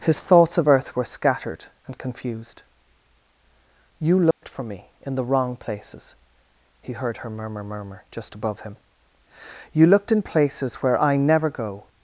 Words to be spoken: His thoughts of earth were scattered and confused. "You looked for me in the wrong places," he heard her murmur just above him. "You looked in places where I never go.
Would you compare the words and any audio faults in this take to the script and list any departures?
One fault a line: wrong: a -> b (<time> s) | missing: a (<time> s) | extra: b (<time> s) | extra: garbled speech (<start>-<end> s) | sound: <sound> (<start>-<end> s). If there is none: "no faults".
sound: dropout (4.3-4.4 s)
extra: murmur (7.6 s)